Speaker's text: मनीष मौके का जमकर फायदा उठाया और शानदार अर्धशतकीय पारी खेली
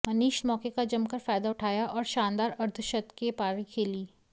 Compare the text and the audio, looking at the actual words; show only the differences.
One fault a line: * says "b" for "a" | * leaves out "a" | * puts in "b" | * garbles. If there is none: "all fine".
all fine